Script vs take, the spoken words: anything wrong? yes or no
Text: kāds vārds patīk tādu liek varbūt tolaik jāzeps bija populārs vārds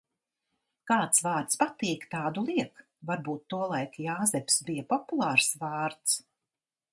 no